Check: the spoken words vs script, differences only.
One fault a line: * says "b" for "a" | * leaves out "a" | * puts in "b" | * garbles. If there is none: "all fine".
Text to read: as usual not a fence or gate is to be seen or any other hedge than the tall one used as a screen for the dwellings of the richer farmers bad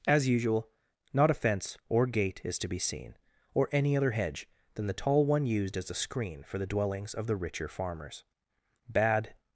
all fine